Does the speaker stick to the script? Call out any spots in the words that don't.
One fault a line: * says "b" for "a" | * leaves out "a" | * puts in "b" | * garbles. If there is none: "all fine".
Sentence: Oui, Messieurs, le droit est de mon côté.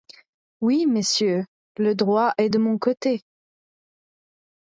all fine